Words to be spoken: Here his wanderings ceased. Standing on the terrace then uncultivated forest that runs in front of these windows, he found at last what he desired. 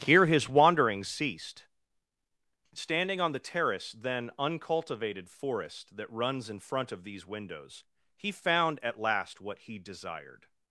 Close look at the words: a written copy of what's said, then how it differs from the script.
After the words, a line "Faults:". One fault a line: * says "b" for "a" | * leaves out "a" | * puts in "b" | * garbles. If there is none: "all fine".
Here his wanderings ceased. Standing on the terrace then uncultivated forest that runs in front of these windows, he found at last what he desired.
Faults:
all fine